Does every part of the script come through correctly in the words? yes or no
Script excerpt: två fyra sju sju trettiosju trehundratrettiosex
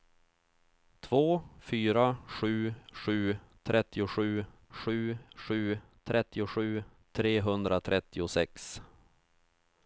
no